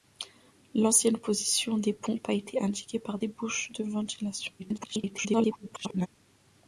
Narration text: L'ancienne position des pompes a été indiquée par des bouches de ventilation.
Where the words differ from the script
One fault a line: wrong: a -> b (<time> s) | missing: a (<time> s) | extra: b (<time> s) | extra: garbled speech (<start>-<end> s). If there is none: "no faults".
extra: garbled speech (4.6-6.1 s)